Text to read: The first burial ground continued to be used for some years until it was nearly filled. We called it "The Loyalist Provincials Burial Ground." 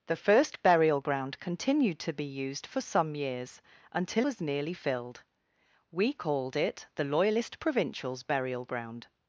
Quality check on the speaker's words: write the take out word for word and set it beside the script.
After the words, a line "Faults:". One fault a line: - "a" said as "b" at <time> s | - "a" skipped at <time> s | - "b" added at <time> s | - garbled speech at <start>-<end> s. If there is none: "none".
The first burial ground continued to be used for some years until was nearly filled. We called it "The Loyalist Provincials Burial Ground."
Faults:
- "it" skipped at 4.2 s